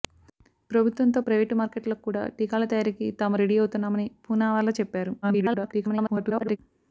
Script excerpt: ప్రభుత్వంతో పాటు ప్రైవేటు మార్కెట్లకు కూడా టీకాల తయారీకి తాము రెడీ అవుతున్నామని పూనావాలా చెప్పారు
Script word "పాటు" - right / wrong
wrong